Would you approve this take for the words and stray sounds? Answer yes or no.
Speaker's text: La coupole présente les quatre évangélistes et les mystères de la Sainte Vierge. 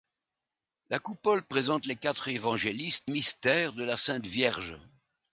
no